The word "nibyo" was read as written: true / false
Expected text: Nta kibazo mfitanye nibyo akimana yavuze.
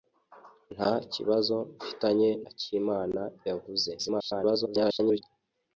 false